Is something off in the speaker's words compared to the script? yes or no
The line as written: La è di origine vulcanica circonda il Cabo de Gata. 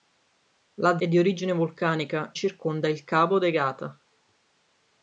no